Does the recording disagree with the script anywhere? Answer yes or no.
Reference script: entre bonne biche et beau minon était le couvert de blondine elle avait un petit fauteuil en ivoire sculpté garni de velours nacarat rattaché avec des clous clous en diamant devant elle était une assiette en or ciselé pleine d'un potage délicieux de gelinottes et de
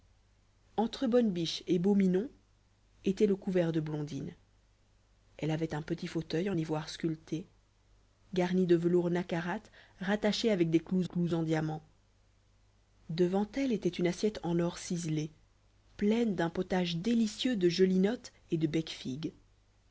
no